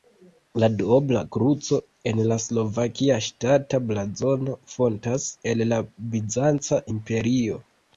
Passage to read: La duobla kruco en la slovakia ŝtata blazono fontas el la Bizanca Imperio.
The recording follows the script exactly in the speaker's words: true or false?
true